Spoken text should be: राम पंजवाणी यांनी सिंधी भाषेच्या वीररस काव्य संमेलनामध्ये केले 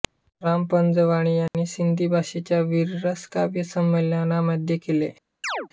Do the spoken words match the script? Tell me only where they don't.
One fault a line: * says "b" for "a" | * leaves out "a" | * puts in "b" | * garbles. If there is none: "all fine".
all fine